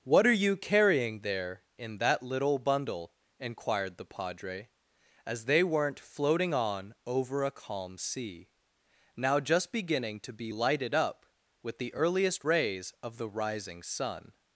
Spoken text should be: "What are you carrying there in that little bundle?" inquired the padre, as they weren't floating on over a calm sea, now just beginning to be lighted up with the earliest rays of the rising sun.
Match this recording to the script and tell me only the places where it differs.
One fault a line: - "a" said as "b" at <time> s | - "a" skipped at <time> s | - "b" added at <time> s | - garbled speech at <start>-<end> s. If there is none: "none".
none